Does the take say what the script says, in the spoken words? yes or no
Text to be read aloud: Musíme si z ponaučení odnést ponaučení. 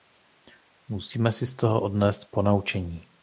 no